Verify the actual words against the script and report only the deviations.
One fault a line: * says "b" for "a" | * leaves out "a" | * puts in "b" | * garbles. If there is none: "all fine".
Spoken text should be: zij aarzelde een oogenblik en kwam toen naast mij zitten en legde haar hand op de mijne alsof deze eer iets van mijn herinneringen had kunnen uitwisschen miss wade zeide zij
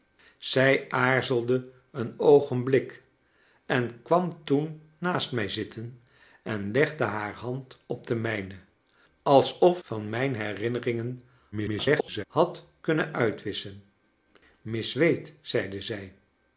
* leaves out "deze eer iets"
* garbles